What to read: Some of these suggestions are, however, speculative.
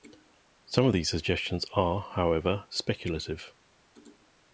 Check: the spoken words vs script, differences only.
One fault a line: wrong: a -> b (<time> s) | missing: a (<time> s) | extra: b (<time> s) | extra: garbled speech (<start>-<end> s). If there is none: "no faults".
no faults